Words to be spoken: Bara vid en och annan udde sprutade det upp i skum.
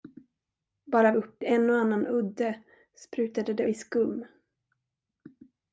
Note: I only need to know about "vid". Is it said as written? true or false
false